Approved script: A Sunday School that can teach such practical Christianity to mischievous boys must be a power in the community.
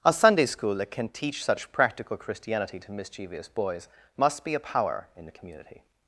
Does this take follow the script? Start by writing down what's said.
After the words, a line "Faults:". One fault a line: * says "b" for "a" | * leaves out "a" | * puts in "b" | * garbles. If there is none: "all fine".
A Sunday School that can teach such practical Christianity to mischievous boys must be a power in the community.
Faults:
all fine